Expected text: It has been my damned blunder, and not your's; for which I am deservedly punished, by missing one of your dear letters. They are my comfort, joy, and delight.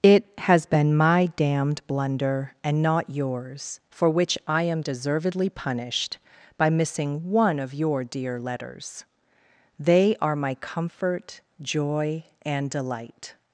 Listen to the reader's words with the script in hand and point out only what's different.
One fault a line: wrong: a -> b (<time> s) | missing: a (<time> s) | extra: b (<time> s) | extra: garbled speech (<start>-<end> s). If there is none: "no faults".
no faults